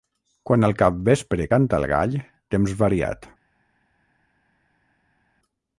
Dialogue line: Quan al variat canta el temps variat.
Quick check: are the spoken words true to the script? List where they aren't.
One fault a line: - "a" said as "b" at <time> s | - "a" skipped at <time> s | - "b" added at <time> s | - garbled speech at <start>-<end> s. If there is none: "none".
- "variat" said as "capvespre" at 0.8 s
- "gall" added at 1.9 s